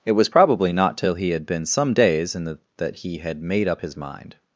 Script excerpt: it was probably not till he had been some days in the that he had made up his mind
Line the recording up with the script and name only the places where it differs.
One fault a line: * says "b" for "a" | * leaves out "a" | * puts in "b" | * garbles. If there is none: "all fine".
all fine